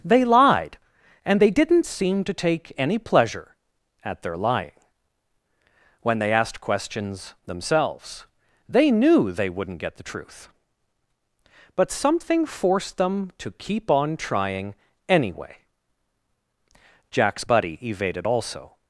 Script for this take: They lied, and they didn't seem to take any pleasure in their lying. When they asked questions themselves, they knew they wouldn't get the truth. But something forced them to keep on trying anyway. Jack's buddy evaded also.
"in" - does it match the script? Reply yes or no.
no